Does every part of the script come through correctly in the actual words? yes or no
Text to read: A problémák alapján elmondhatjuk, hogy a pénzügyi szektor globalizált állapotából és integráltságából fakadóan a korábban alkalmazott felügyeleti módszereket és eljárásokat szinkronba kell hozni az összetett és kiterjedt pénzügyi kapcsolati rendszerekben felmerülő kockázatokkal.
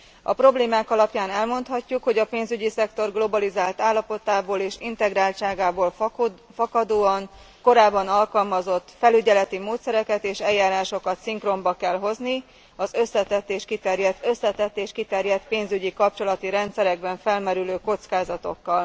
no